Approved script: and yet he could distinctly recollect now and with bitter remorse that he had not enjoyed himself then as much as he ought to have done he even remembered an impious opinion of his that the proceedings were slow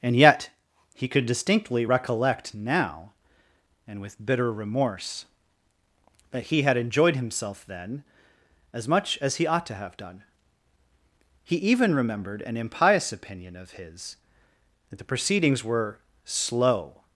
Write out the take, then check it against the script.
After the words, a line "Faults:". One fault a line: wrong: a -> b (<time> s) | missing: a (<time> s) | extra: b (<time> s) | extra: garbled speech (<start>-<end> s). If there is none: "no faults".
and yet he could distinctly recollect now and with bitter remorse that he had enjoyed himself then as much as he ought to have done he even remembered an impious opinion of his that the proceedings were slow
Faults:
missing: not (6.8 s)